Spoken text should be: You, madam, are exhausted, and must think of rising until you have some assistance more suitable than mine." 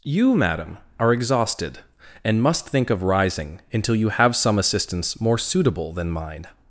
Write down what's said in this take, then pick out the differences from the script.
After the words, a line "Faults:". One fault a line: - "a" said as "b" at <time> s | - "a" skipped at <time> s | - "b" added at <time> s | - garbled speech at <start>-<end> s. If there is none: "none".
You, madam, are exhausted, and must think of rising until you have some assistance more suitable than mine."
Faults:
none